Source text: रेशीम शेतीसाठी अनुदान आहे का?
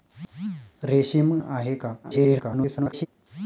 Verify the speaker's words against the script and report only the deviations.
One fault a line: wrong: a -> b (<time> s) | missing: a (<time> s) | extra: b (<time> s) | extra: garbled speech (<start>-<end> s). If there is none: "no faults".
missing: शेतीसाठी अनुदान (1.3 s)
extra: garbled speech (2.0-3.1 s)